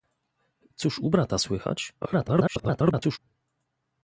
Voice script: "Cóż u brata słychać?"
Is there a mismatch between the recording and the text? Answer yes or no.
yes